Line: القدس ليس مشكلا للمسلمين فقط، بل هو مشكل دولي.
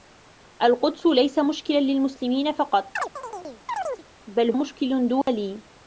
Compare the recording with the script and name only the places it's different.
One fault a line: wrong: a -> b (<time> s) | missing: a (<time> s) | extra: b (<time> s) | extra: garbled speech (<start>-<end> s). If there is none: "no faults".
missing: هو (4.5 s)